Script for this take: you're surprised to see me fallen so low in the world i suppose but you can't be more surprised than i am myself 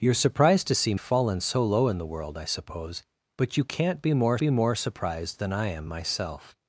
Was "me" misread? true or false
true